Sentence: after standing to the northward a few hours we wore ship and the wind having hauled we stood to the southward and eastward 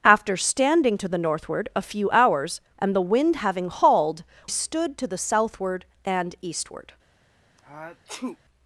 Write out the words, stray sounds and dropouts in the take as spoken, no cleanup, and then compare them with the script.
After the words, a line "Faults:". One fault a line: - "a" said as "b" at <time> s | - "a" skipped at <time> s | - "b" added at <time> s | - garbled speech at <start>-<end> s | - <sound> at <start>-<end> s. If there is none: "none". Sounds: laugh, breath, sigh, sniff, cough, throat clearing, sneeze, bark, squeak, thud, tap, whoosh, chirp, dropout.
after standing to the northward a few hours and the wind having hauled stood to the southward and eastward
Faults:
- "we wore ship" skipped at 2.6 s
- "we" skipped at 4.2 s
- sneeze at 7.6-8.4 s